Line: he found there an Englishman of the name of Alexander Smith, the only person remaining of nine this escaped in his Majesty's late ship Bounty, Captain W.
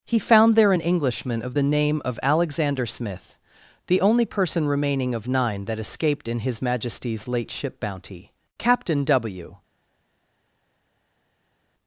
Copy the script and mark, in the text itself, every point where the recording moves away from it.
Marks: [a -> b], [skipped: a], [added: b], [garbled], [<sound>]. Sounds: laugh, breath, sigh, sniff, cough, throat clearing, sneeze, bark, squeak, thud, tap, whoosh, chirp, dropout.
he found there an Englishman of the name of Alexander Smith, the only person remaining of nine [this -> that] escaped in his Majesty's late ship Bounty, Captain W.